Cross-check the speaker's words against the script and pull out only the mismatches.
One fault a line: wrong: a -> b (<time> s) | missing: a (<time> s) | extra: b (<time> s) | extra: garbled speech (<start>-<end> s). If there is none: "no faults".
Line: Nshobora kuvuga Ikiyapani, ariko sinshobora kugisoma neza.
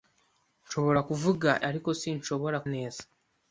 missing: Ikiyapani (1.5 s)
missing: kugisoma (2.6 s)